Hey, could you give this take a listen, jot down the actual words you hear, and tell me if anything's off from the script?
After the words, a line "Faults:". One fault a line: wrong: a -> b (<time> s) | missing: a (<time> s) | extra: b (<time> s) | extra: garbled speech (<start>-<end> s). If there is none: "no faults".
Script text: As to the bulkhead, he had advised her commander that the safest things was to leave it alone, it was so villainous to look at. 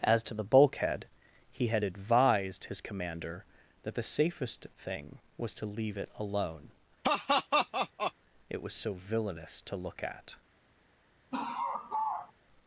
As to the bulkhead, he had advised his commander that the safest thing was to leave it alone, it was so villainous to look at.
Faults:
wrong: her -> his (2.7 s)
wrong: things -> thing (4.8 s)